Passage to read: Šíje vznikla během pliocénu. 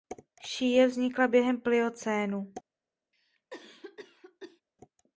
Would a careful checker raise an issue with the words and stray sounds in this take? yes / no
yes